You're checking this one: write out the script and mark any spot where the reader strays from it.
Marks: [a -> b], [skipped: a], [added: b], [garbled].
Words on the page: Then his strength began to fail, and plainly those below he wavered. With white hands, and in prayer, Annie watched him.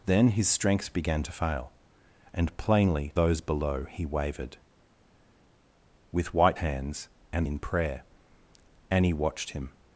Then his strength began to fail, and plainly those below he wavered. With white hands, and in prayer, Annie watched him.